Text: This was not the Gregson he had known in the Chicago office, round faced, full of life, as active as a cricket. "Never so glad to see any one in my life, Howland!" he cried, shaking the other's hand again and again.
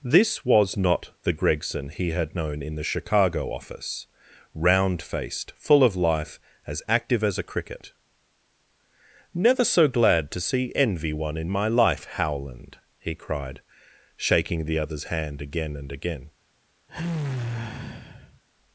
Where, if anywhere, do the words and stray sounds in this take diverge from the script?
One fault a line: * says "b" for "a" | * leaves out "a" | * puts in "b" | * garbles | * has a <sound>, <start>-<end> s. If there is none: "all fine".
* says "envy" for "any"
* has a sigh, 16.9-18.4 s